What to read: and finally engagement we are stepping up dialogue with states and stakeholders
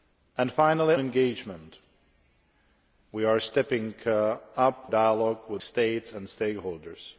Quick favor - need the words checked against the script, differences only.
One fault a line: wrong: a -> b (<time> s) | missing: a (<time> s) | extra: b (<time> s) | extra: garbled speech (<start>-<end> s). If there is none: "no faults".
no faults